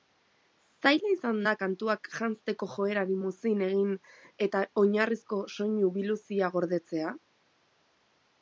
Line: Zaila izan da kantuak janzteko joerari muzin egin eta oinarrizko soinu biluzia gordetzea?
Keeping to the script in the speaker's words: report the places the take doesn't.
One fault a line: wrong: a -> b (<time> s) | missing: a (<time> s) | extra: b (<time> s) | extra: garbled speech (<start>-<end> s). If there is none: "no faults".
no faults